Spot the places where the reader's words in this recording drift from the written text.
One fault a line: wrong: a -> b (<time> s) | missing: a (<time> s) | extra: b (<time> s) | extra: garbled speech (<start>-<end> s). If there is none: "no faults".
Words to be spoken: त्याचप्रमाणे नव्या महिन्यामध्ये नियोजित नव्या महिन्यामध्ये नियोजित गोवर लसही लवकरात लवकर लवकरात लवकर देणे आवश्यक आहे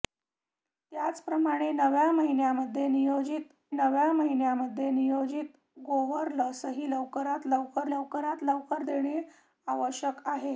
no faults